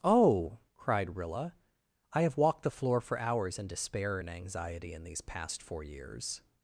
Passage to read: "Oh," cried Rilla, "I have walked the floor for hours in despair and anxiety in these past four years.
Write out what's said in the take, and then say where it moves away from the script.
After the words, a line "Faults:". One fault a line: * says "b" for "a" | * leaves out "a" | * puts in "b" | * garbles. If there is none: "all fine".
"Oh," cried Rilla, "I have walked the floor for hours in despair and anxiety in these past four years.
Faults:
all fine